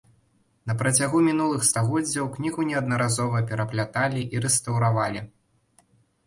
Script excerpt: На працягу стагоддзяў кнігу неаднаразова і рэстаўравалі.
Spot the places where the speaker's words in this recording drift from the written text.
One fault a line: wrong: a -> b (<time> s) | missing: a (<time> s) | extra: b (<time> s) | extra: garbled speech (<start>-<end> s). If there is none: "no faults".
extra: мінулых (1.3 s)
extra: перапляталі (3.5 s)